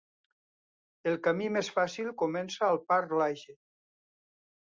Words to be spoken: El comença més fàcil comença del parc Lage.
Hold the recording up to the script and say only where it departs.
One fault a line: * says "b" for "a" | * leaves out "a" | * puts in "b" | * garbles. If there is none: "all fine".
* says "camí" for "comença"
* says "al" for "del"